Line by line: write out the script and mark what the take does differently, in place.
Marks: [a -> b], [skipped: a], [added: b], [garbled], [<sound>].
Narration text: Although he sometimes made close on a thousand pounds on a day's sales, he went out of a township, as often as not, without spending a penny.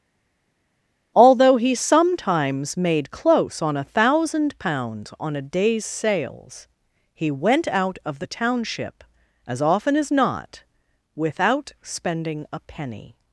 Although he sometimes made close on a thousand pounds on a day's sales, he went out of [a -> the] township, as often as not, without spending a penny.